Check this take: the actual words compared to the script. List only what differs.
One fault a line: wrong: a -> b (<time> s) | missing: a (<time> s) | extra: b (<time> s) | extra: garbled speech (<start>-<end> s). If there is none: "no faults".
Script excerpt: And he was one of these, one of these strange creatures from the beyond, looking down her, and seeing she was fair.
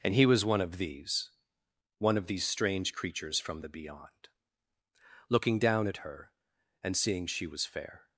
extra: at (5.9 s)